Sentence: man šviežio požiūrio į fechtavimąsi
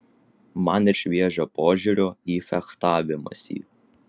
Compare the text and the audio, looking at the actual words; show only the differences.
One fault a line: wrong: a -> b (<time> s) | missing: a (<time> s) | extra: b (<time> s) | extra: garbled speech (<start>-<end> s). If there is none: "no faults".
no faults